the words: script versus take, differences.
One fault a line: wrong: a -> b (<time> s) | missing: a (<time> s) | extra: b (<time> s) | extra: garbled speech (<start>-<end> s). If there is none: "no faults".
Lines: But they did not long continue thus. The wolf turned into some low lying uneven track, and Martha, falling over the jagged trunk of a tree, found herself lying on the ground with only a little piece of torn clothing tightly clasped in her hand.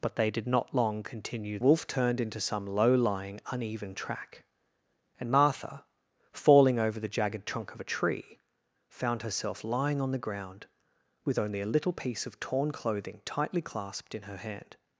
missing: thus The (1.6 s)